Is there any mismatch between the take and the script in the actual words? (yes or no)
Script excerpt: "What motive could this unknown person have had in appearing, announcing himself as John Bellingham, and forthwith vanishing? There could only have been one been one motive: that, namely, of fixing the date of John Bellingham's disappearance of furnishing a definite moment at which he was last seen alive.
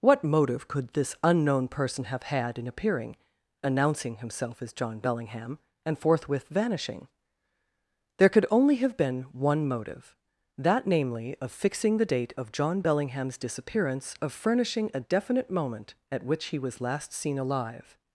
yes